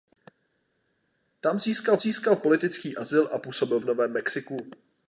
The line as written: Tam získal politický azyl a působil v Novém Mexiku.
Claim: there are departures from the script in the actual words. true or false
true